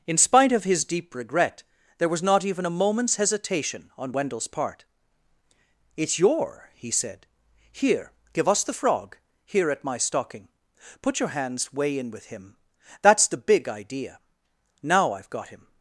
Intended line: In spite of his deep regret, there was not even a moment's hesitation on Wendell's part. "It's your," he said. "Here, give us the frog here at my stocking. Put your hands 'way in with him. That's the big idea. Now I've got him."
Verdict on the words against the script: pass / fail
pass